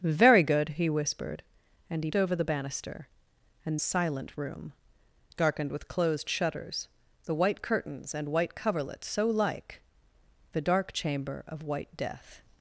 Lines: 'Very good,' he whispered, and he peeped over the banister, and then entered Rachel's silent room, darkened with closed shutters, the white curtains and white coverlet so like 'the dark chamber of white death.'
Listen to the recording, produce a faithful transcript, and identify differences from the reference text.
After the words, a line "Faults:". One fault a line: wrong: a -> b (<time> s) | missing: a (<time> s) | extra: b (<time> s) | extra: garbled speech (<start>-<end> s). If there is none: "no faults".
'Very good,' he whispered, and he over the banister, and silent room, darkened with closed shutters, the white curtains and white coverlet so like 'the dark chamber of white death.'
Faults:
missing: peeped (2.1 s)
missing: then entered Rachel's (3.8 s)